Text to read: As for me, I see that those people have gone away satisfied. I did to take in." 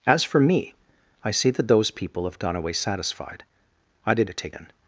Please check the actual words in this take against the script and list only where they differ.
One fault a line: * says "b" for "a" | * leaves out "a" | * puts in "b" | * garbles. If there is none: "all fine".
all fine